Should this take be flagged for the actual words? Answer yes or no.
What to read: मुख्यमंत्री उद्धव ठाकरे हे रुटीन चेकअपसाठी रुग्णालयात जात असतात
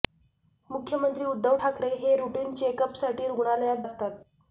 yes